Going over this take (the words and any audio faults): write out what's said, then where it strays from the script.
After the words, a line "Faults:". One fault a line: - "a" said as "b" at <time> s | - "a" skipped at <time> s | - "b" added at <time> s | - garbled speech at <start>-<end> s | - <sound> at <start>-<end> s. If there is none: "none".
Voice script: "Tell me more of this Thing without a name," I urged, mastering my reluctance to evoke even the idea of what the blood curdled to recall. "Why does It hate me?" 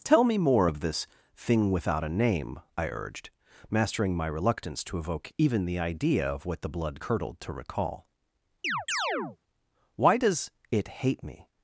"Tell me more of this Thing without a name," I urged, mastering my reluctance to evoke even the idea of what the blood curdled to recall. "Why does It hate me?"
Faults:
- chirp at 8.6-9.4 s